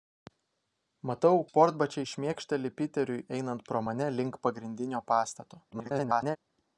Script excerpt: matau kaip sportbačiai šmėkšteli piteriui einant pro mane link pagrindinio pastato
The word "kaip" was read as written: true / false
false